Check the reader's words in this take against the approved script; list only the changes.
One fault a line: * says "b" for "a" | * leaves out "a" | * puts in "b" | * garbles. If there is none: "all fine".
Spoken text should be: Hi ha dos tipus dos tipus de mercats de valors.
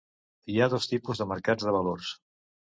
* leaves out "dos tipus"